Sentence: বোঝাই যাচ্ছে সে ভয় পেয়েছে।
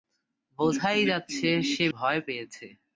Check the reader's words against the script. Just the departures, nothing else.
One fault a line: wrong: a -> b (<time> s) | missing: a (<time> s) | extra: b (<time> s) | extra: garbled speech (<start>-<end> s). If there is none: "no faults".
no faults